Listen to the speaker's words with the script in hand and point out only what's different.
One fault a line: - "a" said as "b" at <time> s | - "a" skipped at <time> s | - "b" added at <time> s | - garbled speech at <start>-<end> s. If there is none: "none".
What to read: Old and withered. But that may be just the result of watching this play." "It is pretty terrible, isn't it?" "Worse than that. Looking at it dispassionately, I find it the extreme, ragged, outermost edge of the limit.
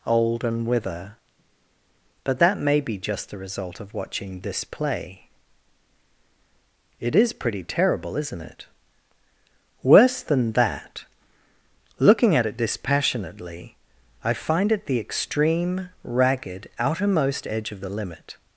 - "withered" said as "wither" at 0.7 s